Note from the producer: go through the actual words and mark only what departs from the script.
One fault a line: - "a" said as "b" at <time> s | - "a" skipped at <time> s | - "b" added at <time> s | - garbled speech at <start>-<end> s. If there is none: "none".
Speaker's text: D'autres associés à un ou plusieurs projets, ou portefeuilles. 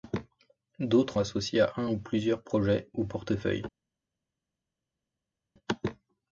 none